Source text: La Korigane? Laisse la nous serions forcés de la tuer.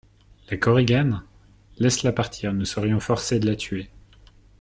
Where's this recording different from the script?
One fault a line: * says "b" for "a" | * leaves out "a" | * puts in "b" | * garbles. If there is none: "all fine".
* puts in "partir"